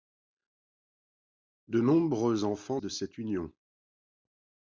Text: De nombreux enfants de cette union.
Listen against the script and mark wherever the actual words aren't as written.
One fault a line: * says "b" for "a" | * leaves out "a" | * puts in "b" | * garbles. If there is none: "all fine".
all fine